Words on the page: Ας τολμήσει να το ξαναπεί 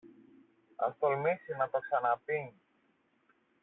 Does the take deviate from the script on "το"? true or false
false